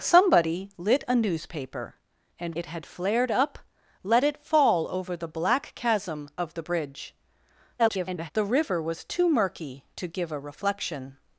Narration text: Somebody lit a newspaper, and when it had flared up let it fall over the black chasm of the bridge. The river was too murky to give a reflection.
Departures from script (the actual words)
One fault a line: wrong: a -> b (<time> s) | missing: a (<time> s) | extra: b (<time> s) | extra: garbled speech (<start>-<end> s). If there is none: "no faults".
missing: when (2.5 s)
extra: garbled speech (7.8-8.3 s)